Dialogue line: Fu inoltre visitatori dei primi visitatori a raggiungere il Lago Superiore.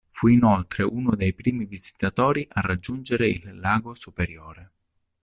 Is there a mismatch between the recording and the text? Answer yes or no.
yes